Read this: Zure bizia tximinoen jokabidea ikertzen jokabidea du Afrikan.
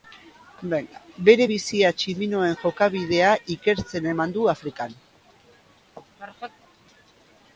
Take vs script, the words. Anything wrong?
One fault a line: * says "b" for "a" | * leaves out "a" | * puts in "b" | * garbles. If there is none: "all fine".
* says "Bere" for "Zure"
* says "eman" for "jokabidea"